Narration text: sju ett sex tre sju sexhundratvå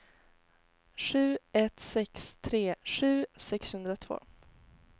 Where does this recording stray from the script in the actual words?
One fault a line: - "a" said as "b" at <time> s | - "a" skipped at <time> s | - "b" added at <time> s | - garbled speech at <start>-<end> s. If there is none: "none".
none